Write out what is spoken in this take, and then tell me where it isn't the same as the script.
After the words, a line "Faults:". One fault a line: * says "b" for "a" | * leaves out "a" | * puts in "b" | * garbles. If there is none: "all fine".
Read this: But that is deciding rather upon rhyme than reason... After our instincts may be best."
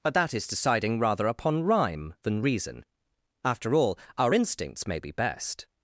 But that is deciding rather upon rhyme than reason... After all, our instincts may be best."
Faults:
* puts in "all"